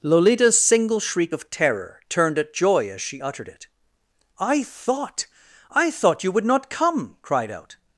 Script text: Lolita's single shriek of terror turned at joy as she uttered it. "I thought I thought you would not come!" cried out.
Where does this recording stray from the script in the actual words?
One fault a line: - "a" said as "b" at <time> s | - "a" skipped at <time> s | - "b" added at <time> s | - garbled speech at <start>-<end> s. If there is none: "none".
none